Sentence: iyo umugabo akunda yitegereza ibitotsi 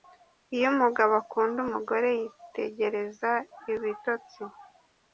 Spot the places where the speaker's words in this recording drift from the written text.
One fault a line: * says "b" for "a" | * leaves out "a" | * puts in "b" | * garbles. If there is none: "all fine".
* puts in "umugore"